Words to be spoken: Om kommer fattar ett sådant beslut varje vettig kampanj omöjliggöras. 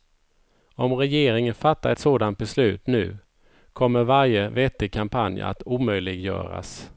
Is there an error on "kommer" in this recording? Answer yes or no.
yes